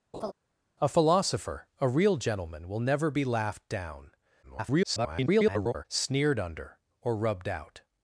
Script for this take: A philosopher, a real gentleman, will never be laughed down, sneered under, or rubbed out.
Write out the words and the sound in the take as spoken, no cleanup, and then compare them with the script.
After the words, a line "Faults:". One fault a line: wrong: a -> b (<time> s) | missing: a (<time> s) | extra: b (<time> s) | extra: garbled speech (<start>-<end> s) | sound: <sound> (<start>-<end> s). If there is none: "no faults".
A philosopher, a real gentleman, will never be laughed down, [garbled] sneered under, or rubbed out.
Faults:
sound: laugh (0.1-0.3 s)
extra: garbled speech (4.4-5.8 s)